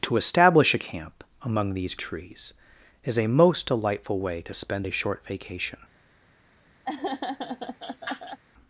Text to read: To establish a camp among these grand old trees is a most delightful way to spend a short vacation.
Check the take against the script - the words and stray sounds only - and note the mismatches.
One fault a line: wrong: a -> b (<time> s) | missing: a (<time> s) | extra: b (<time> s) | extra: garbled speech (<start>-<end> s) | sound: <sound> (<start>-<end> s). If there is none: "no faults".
missing: grand old (1.9 s)
sound: laugh (6.8-8.4 s)